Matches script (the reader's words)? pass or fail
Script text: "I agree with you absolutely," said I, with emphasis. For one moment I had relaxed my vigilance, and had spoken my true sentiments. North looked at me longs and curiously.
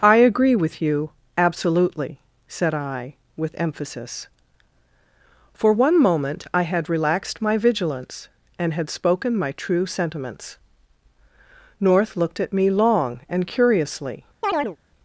fail